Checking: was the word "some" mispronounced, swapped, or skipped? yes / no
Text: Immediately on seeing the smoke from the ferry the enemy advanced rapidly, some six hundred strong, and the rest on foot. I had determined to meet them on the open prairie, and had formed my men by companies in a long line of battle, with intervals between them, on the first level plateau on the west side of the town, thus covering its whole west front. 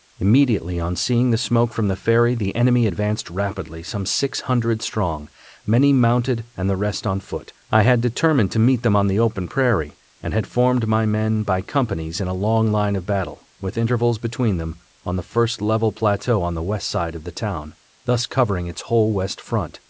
no